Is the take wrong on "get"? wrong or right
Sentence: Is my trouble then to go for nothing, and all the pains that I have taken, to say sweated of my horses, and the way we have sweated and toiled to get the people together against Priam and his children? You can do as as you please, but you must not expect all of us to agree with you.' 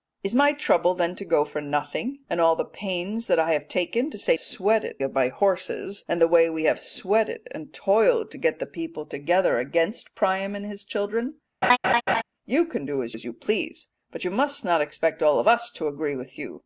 right